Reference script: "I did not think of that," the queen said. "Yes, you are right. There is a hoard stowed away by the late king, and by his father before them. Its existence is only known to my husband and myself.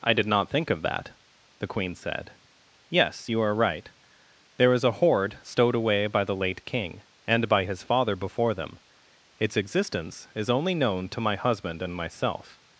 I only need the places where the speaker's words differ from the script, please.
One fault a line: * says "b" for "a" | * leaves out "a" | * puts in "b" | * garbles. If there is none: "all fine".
all fine